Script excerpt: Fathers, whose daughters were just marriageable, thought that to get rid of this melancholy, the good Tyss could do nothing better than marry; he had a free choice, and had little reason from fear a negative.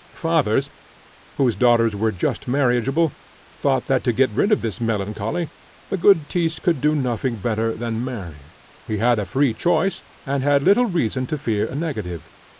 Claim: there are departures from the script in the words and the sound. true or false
true